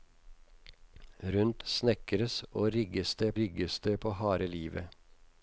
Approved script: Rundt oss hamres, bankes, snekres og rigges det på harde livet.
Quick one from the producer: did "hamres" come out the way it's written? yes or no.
no